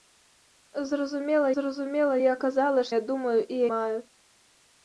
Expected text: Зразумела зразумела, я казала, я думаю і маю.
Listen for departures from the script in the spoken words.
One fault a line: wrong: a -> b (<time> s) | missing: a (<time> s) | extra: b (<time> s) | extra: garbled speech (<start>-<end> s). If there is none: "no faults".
no faults